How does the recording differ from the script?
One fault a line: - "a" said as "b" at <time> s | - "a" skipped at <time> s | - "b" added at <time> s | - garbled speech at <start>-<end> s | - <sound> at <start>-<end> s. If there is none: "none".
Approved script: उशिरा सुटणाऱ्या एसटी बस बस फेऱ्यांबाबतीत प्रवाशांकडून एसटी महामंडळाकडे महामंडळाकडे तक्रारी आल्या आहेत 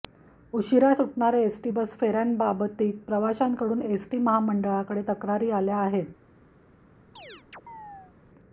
- "बस" skipped at 1.9 s
- "महामंडळाकडे" skipped at 5.0 s
- chirp at 7.2-8.1 s